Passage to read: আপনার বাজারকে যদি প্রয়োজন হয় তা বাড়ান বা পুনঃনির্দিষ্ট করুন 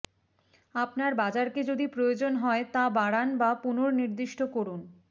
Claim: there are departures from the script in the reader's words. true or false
false